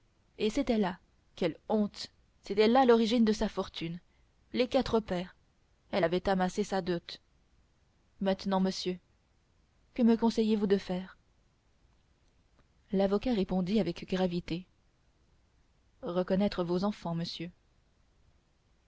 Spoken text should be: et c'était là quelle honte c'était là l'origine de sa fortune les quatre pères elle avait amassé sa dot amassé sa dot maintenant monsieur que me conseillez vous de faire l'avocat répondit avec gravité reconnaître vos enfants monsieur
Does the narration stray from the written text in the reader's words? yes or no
yes